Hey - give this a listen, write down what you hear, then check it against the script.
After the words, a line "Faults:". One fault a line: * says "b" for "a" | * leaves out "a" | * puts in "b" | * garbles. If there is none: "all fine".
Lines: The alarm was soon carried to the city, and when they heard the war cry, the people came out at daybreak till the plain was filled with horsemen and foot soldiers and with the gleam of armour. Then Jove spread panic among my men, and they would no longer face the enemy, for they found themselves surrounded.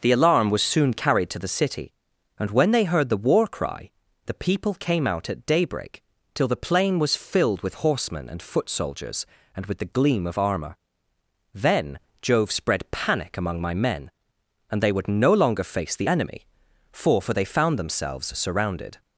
The alarm was soon carried to the city, and when they heard the war cry, the people came out at daybreak till the plain was filled with horsemen and foot soldiers and with the gleam of armour. Then Jove spread panic among my men, and they would no longer face the enemy, for for they found themselves surrounded.
Faults:
* puts in "for"